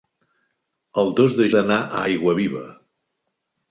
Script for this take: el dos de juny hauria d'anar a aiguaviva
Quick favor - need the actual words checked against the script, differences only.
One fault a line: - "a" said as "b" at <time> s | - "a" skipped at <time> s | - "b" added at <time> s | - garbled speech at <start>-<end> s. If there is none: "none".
- "juny hauria" skipped at 1.5 s